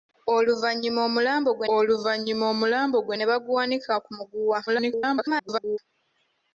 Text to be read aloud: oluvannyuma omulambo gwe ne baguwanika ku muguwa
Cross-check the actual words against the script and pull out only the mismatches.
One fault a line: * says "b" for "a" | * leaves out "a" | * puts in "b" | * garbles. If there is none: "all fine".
* puts in "oluvannyuma omulambo gwe"
* garbles